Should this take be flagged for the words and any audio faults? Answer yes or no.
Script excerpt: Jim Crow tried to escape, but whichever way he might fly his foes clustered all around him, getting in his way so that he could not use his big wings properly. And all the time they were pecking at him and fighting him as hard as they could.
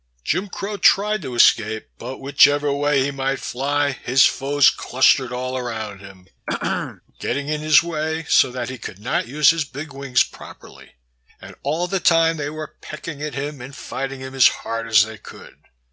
yes